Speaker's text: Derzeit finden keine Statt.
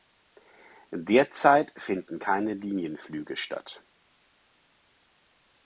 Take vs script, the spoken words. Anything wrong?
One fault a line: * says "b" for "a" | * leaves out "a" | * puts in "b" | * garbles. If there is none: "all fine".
* puts in "Linienflüge"